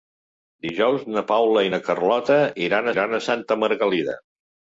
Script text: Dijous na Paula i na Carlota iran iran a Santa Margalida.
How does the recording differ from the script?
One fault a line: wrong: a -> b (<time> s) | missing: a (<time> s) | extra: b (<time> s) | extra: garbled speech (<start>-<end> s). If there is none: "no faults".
no faults